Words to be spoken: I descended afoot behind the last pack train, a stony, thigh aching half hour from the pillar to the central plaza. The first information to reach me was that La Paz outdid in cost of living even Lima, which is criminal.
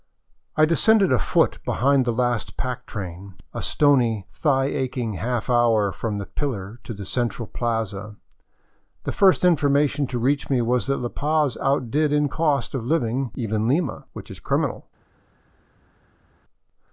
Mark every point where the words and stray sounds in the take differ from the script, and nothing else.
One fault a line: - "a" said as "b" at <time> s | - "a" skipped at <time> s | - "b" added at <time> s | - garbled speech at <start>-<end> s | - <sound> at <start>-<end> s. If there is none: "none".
none